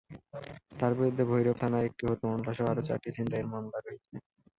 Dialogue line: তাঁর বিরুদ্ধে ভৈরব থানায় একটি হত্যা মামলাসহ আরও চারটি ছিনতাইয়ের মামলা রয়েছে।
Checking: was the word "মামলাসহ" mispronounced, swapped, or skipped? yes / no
no